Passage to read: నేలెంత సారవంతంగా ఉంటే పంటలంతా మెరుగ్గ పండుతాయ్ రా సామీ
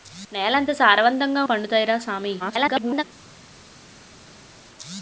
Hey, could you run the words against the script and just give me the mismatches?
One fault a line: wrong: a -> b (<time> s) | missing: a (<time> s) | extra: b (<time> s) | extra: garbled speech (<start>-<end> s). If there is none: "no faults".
missing: ఉంటే పంటలంతా మెరుగ్గ (1.4 s)
extra: garbled speech (2.4-3.0 s)